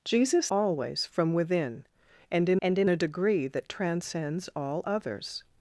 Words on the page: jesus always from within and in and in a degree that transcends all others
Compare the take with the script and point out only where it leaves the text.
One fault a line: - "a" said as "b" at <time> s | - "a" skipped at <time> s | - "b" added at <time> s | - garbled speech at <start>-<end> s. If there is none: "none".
none